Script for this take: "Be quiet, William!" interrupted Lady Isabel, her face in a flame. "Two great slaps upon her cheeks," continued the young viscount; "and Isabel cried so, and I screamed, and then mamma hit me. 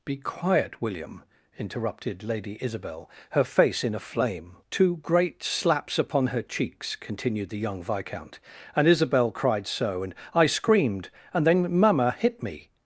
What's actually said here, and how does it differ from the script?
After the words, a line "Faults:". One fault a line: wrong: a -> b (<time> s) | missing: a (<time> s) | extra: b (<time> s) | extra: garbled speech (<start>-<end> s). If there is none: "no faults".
"Be quiet, William!" interrupted Lady Isabel, her face in a flame. "Two great slaps upon her cheeks," continued the young viscount; "and Isabel cried so, and I screamed, and then mamma hit me.
Faults:
no faults